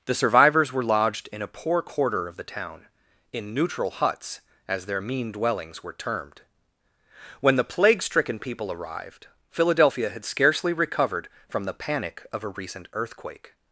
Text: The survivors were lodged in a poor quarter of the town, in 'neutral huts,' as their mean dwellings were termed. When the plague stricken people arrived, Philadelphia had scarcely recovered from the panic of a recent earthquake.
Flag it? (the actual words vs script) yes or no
no